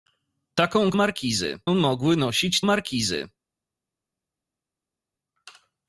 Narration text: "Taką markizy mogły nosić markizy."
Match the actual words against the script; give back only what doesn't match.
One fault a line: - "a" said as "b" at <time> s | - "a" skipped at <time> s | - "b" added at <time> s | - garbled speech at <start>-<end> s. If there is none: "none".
none